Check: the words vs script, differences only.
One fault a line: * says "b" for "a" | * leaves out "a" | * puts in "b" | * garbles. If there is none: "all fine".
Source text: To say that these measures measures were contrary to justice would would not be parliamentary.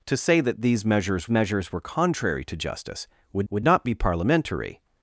all fine